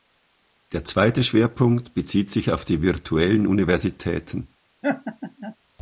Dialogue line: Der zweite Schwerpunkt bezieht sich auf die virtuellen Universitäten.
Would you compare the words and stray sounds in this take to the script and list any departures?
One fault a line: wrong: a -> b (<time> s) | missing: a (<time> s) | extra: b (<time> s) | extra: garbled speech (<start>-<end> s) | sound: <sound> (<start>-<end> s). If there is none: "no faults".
sound: laugh (4.8-5.6 s)